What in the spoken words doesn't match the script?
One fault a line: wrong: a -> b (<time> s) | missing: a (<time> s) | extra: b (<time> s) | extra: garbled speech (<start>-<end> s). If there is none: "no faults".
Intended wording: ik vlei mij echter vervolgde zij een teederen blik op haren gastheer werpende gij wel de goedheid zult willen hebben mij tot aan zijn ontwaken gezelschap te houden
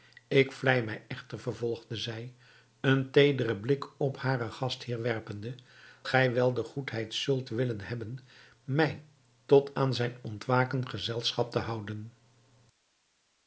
no faults